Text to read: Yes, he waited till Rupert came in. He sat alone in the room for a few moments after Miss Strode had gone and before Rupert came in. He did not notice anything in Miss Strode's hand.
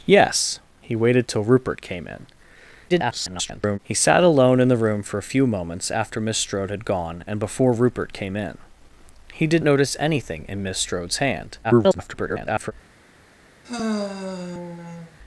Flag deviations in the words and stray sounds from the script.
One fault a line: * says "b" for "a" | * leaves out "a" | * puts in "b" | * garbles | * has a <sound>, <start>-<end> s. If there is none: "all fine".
* garbles
* leaves out "not"
* garbles
* has a sigh, 13.6-15.2 s